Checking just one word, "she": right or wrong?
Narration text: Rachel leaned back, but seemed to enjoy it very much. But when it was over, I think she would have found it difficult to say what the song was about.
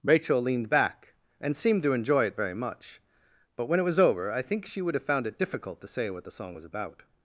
right